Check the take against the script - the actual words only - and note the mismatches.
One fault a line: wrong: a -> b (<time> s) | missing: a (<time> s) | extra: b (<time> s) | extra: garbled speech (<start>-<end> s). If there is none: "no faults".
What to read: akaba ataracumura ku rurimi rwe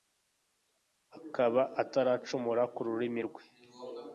no faults